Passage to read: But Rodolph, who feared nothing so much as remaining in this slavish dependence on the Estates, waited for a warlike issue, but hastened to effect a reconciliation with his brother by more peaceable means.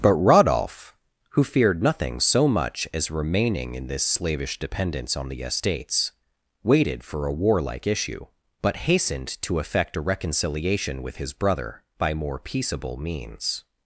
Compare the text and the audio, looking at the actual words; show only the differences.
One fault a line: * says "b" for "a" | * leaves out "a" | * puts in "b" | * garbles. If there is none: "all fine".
all fine